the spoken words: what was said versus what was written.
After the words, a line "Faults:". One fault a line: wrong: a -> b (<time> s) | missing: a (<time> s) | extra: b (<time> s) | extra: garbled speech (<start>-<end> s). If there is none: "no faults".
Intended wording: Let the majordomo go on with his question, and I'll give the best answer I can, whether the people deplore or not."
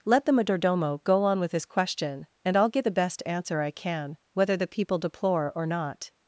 Let the majordomo go on with his question, and I'll get the best answer I can, whether the people deplore or not."
Faults:
wrong: give -> get (2.7 s)